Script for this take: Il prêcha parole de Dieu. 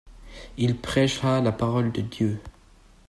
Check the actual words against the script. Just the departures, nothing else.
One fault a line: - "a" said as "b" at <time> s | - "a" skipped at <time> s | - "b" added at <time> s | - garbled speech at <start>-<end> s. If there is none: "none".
- "la" added at 1.4 s